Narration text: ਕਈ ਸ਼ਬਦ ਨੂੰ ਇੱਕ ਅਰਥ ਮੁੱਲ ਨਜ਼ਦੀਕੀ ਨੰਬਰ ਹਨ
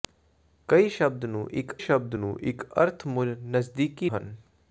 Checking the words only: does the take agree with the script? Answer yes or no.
no